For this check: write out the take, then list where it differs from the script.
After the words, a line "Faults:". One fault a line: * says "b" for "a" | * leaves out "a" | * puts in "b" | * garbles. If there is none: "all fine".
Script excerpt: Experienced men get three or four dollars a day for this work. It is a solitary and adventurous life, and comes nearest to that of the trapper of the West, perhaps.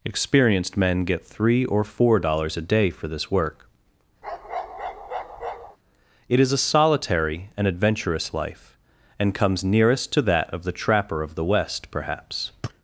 Experienced men get three or four dollars a day for this work. It is a solitary and adventurous life, and comes nearest to that of the trapper of the West, perhaps.
Faults:
all fine